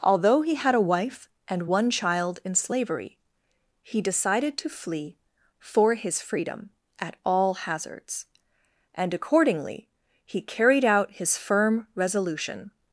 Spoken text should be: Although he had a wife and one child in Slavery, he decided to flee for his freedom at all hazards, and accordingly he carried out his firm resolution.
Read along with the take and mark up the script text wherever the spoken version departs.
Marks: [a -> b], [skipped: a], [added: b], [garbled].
Although he had a wife and one child in Slavery, he decided to flee for his freedom at all hazards, and accordingly he carried out his firm resolution.